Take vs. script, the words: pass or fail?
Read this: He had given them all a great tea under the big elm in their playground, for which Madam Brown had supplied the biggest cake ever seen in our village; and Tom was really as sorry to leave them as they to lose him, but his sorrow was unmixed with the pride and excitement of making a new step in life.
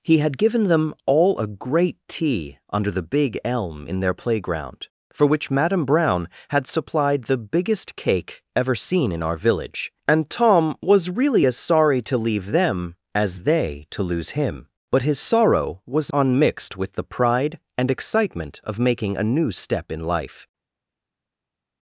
pass